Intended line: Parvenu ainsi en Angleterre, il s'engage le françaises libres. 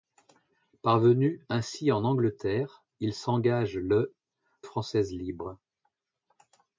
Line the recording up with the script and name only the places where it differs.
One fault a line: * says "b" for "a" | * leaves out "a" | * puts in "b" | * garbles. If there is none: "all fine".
all fine